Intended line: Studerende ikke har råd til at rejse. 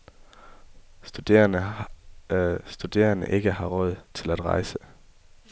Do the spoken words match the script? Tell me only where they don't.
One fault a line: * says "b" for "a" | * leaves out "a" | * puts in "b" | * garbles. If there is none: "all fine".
all fine